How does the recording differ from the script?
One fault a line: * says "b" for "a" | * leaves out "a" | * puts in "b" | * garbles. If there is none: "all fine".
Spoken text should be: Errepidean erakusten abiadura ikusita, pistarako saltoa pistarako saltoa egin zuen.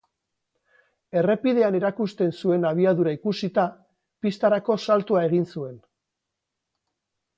* puts in "zuen"
* leaves out "pistarako saltoa"